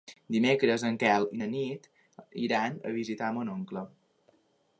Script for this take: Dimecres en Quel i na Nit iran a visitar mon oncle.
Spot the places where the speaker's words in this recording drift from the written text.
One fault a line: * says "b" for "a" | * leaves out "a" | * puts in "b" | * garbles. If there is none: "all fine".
all fine